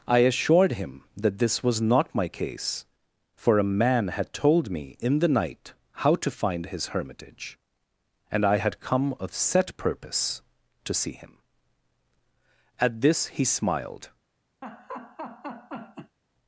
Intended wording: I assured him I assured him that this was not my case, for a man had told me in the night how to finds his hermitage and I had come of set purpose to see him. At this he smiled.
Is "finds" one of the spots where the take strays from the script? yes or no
yes